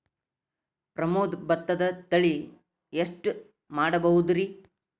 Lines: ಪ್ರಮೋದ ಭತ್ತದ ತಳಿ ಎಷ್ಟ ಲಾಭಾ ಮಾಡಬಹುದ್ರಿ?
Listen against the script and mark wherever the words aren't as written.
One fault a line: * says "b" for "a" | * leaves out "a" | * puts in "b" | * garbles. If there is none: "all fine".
* leaves out "ಲಾಭಾ"